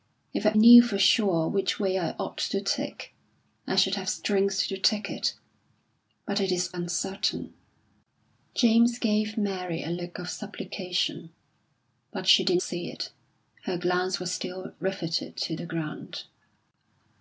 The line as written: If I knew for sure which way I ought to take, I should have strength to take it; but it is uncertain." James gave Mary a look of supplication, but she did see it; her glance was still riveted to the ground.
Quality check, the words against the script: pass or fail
pass